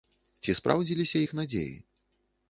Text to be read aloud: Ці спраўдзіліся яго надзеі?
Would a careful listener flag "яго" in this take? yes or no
yes